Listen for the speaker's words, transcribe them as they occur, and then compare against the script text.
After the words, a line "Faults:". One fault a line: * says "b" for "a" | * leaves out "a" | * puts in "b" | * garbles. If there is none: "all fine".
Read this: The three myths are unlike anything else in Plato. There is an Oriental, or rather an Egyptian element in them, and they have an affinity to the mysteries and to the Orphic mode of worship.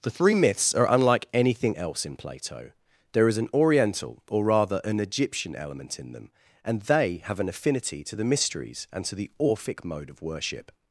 The three myths are unlike anything else in Plato. There is an Oriental, or rather an Egyptian element in them, and they have an affinity to the mysteries and to the Orphic mode of worship.
Faults:
all fine